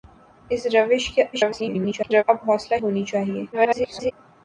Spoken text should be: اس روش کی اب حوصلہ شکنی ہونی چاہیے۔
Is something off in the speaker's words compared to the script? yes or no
yes